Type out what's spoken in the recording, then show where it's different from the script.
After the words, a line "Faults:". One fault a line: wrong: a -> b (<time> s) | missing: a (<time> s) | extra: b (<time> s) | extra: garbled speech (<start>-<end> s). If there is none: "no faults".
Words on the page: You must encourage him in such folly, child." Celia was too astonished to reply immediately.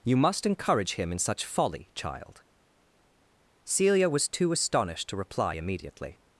You must encourage him in such folly, child." Celia was too astonished to reply immediately.
Faults:
no faults